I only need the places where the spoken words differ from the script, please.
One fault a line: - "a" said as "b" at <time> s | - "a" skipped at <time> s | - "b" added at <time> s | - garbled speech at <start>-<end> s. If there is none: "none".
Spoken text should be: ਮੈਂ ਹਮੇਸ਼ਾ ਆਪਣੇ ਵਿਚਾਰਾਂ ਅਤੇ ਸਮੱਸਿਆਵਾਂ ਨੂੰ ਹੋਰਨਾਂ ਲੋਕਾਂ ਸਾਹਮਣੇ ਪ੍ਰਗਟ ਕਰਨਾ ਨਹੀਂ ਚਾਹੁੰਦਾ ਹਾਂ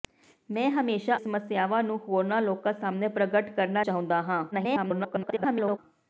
- "ਆਪਣੇ ਵਿਚਾਰਾਂ ਅਤੇ" skipped at 1.1 s
- "ਨਹੀਂ" skipped at 3.8 s
- garbled speech at 4.5-5.8 s